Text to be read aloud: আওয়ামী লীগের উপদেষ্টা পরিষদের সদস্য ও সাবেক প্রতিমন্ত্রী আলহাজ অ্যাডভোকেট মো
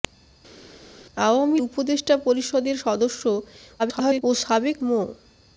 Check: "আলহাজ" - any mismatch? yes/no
yes